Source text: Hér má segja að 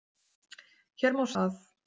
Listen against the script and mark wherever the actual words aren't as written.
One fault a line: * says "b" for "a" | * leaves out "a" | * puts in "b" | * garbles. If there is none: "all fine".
* leaves out "segja"